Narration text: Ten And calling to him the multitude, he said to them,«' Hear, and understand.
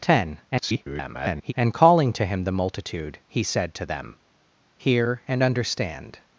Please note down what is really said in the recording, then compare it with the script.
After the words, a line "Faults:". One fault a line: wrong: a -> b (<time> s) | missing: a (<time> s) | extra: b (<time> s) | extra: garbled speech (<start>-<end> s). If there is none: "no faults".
Ten [garbled] And calling to him the multitude, he said to them,«' Hear, and understand.
Faults:
extra: garbled speech (0.5-1.5 s)